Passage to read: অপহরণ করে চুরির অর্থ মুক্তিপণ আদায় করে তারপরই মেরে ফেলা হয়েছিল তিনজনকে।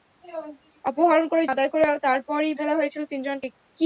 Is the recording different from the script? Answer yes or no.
yes